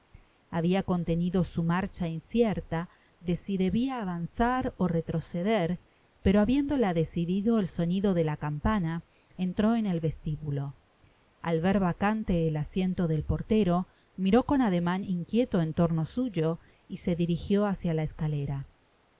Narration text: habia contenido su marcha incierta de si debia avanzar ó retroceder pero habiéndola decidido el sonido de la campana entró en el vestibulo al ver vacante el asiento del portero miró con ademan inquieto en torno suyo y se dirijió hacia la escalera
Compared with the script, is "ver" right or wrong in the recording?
right